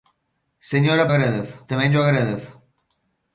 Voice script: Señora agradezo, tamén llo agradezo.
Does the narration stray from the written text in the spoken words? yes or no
no